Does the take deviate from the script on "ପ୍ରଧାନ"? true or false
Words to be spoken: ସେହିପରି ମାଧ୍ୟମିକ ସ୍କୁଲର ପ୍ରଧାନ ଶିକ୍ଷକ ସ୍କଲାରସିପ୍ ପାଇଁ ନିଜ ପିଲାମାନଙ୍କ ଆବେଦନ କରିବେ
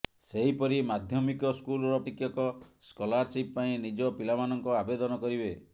true